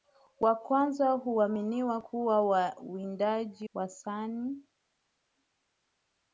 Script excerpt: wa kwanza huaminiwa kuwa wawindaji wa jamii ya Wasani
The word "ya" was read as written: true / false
false